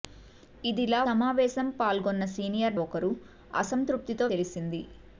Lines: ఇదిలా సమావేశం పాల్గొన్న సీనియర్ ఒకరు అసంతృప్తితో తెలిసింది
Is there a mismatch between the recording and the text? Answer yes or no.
no